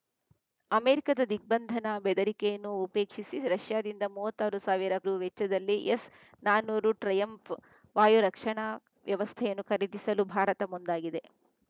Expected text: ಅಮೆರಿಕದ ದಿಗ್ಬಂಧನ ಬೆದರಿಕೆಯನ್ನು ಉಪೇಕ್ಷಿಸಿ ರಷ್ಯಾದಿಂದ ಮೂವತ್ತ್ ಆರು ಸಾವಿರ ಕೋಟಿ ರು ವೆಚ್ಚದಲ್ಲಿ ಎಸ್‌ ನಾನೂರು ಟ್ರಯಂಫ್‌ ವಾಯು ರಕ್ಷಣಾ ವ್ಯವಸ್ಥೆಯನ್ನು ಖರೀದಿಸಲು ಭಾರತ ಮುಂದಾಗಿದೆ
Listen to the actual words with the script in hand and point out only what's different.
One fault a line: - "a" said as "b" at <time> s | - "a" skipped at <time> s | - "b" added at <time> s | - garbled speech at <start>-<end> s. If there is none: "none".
- "ಕೋಟಿ" skipped at 5.0 s